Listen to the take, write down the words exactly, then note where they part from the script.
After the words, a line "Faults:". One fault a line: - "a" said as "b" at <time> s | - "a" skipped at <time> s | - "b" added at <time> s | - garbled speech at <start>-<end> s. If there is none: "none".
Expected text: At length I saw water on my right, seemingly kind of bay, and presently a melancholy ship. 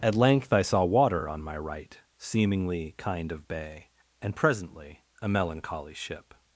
At length I saw water on my right, seemingly kind of bay, and presently a melancholy ship.
Faults:
none